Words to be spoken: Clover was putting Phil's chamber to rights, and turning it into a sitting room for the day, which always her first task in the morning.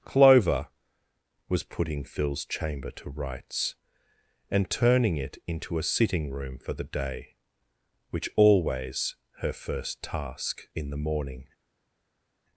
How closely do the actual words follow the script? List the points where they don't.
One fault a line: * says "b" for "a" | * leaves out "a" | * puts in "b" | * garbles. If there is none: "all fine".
all fine